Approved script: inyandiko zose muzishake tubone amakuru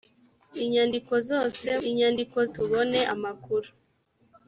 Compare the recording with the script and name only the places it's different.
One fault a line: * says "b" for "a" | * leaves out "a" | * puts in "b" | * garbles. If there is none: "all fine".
* says "inyandiko" for "muzishake"